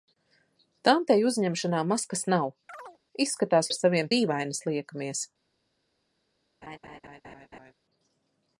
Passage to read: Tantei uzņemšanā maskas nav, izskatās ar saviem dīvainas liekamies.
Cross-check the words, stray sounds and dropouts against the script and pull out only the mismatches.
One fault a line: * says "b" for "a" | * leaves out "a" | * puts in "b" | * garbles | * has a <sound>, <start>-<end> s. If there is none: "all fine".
* has a chirp, 2.7-3.0 s
* has a laugh, 6.6-7.7 s